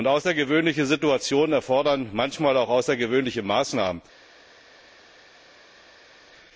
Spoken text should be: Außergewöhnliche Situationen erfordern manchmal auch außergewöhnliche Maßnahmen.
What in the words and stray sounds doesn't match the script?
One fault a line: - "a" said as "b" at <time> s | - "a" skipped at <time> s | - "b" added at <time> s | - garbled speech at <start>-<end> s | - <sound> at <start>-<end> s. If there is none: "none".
none